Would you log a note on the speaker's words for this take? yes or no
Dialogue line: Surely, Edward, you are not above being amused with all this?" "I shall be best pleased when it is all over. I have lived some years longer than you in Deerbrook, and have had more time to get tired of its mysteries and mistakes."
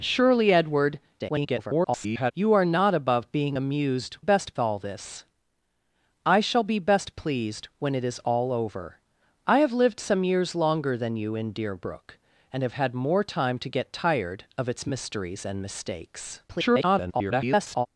yes